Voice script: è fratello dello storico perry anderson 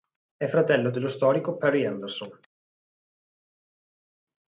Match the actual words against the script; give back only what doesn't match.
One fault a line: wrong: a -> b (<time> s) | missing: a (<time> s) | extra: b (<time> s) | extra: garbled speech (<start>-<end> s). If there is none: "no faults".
no faults